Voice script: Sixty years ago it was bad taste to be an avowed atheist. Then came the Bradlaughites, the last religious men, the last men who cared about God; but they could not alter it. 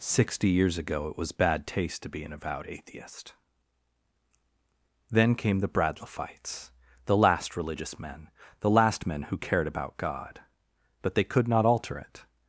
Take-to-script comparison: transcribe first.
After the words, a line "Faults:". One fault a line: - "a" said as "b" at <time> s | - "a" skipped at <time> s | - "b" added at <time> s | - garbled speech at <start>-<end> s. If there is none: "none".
Sixty years ago it was bad taste to be an avowed atheist. Then came the Bradlaughites, the last religious men, the last men who cared about God; but they could not alter it.
Faults:
none